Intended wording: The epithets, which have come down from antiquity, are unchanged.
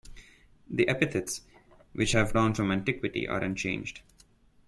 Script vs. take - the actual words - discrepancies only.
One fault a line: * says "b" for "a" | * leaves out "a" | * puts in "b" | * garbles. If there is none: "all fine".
* leaves out "come"